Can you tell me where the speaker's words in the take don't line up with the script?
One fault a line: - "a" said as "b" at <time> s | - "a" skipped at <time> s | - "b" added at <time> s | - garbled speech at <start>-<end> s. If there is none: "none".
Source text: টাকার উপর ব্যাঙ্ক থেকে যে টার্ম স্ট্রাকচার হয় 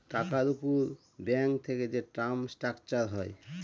none